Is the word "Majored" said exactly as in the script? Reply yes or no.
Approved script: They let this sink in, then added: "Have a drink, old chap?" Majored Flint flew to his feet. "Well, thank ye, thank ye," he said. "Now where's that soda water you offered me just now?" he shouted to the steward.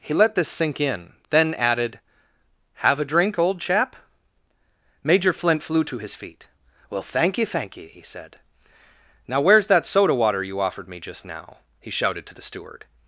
no